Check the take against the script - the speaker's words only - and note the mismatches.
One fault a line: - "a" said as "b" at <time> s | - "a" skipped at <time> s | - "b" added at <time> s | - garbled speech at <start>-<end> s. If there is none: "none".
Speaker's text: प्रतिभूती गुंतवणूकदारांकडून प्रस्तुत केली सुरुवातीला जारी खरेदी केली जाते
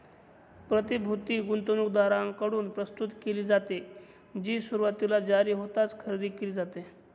- "जाते जी" added at 3.4 s
- "होताच" added at 5.5 s